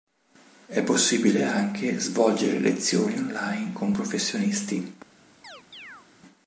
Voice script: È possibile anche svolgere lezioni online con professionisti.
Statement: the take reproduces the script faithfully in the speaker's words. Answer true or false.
true